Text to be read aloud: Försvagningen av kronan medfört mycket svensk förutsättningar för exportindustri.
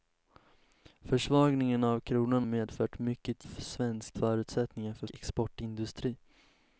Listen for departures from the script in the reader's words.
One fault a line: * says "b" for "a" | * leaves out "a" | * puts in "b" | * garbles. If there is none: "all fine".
all fine